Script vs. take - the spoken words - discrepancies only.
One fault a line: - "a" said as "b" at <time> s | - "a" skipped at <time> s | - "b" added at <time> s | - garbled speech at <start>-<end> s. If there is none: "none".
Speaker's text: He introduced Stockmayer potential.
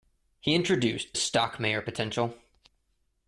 none